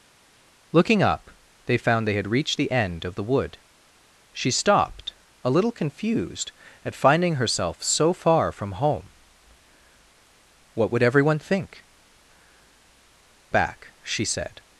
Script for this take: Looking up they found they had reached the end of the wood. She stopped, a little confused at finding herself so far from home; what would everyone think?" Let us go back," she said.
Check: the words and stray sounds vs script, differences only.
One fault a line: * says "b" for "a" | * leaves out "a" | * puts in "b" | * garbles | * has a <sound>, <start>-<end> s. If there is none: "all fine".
* leaves out "Let us go"